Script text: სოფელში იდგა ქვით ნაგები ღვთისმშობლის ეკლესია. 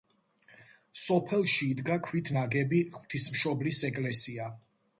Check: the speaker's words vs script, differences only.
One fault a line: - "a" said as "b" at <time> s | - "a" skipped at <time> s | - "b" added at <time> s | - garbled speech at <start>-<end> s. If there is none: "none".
none